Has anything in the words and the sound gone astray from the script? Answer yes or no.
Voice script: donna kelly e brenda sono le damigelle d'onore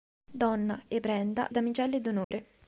yes